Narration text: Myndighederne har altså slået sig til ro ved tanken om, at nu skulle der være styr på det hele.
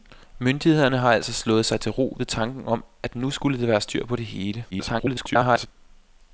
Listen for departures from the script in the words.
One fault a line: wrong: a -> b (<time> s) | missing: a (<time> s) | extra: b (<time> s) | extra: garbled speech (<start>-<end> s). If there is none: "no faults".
extra: garbled speech (4.7-5.7 s)